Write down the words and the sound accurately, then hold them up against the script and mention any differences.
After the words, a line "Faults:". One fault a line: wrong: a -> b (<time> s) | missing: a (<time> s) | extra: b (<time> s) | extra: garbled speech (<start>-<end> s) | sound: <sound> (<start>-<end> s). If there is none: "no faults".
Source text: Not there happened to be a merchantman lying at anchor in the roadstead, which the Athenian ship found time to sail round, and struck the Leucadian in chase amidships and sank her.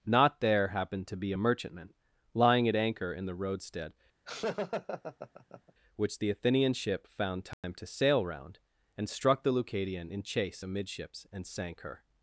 Not there happened to be a merchantman lying at anchor in the roadstead, which the Athenian ship found time to sail round, and struck the Leucadian in chase amidships and sank her.
Faults:
sound: laugh (4.3-5.7 s)
sound: dropout (7.5-7.6 s)